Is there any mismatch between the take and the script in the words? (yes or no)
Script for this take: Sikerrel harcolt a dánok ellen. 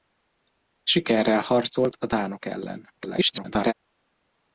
yes